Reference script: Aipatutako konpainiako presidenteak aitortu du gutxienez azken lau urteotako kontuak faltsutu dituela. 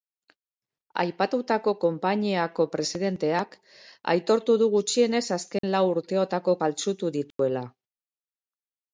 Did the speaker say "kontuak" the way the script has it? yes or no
no